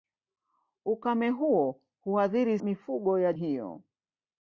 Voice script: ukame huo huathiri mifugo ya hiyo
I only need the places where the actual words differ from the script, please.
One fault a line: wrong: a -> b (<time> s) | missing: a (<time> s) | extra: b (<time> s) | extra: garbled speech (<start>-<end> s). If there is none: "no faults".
no faults